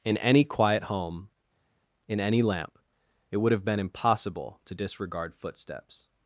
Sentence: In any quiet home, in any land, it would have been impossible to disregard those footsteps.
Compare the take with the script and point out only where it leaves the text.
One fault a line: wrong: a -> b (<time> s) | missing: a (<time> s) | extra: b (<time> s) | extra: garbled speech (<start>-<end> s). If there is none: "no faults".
wrong: land -> lamp (2.4 s)
missing: those (5.3 s)